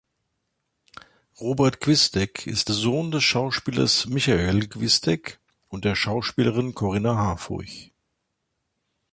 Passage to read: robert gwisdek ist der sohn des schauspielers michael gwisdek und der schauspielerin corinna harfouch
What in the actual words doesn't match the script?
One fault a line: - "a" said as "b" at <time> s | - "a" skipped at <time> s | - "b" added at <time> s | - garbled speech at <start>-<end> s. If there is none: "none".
- "der" skipped at 2.7 s